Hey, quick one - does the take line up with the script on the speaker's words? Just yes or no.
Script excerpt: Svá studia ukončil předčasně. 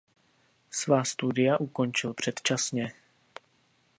yes